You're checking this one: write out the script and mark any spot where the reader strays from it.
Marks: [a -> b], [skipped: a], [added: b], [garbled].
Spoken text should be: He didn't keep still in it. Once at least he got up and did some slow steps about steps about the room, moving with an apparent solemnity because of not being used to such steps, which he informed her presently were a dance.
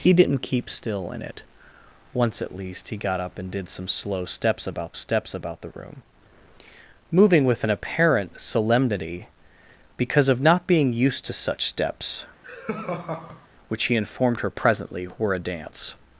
He didn't keep still in it. Once at least he got up and did some slow steps about steps about the room, moving with an apparent solemnity because of not being used to such steps, which he informed her presently were a dance.